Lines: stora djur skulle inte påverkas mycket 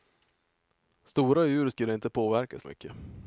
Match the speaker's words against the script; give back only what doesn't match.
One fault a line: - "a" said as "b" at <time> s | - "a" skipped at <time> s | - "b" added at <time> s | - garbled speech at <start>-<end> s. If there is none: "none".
none